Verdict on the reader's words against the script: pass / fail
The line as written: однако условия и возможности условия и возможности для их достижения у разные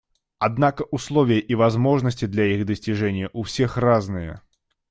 fail